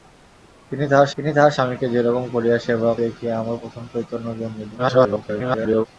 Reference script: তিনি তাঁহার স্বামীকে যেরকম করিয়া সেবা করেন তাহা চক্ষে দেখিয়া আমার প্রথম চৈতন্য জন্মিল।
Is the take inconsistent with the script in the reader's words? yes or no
yes